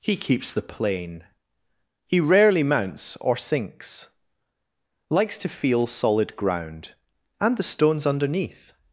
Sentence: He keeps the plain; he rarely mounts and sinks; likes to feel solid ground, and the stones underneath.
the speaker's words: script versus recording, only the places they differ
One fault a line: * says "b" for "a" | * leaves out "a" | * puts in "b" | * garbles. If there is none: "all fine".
* says "or" for "and"